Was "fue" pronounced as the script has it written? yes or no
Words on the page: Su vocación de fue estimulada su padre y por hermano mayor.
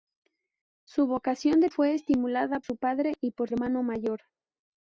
yes